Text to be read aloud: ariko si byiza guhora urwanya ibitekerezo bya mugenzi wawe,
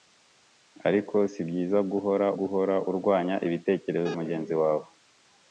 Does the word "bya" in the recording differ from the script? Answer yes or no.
yes